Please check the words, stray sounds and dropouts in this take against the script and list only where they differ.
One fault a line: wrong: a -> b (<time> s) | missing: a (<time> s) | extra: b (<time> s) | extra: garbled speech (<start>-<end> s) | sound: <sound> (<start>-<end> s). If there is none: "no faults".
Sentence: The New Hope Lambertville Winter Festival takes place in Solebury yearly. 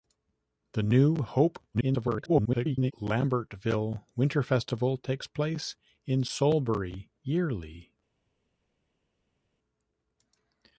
extra: garbled speech (1.7-2.9 s)